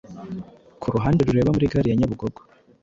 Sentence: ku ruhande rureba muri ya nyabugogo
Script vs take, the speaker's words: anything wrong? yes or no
yes